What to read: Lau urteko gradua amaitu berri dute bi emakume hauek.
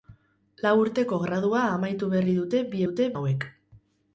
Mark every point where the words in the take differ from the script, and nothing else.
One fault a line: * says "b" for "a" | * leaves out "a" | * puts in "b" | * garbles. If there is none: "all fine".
* says "dute" for "emakume"